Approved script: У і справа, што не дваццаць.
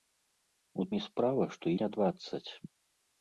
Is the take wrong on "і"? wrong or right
right